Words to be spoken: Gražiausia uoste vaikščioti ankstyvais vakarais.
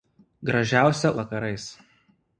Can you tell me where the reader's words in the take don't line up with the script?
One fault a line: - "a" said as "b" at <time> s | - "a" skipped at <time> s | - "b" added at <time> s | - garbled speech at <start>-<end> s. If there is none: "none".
- "uoste vaikščioti ankstyvais" skipped at 1.1 s